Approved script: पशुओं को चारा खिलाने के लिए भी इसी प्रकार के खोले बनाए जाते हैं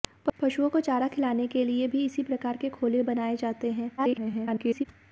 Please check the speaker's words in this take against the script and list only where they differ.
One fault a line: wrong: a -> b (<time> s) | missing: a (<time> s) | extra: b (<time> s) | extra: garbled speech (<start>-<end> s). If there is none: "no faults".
extra: garbled speech (4.0-4.9 s)